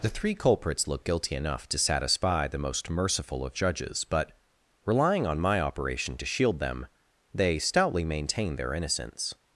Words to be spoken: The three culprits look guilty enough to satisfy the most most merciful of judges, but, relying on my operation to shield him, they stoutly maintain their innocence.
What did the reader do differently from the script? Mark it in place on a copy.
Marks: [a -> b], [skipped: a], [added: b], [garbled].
The three culprits look guilty enough to satisfy the most [skipped: most] merciful of judges, but, relying on my operation to shield [him, -> them] they stoutly maintain their innocence.